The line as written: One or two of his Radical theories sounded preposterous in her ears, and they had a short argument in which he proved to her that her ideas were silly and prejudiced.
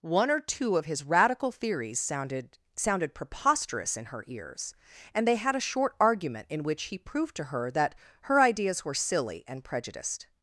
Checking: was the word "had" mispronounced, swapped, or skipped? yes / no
no